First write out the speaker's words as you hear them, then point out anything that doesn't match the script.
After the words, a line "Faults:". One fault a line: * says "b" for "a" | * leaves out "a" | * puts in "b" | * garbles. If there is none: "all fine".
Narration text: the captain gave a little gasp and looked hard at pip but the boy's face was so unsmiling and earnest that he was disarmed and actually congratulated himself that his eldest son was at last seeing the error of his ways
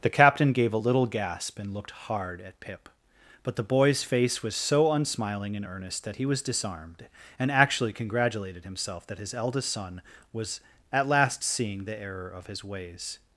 the captain gave a little gasp and looked hard at pip but the boy's face was so unsmiling and earnest that he was disarmed and actually congratulated himself that his eldest son was at last seeing the error of his ways
Faults:
all fine